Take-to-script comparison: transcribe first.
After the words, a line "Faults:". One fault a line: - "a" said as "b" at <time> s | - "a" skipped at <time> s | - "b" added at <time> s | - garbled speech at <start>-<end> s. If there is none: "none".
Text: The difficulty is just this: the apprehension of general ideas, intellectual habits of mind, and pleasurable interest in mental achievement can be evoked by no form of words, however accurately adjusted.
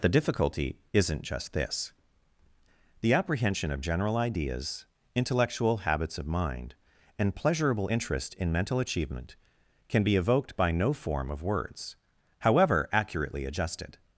The difficulty isn't just this: the apprehension of general ideas, intellectual habits of mind, and pleasurable interest in mental achievement can be evoked by no form of words, however accurately adjusted.
Faults:
- "is" said as "isn't" at 0.9 s